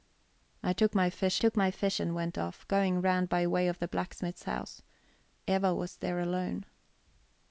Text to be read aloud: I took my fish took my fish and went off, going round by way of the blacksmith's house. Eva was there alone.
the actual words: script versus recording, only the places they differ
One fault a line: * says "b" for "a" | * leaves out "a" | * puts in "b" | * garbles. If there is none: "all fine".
all fine